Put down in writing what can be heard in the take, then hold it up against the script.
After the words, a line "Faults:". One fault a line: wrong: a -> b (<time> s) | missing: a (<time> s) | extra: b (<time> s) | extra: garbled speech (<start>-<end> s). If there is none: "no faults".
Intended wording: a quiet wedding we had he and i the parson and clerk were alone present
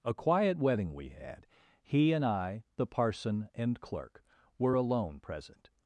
a quiet wedding we had he and i the parson and clerk were alone present
Faults:
no faults